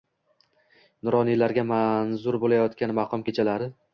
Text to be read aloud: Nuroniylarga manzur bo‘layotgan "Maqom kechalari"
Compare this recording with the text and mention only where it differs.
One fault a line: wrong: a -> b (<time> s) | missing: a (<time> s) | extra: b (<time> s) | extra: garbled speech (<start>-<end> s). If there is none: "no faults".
no faults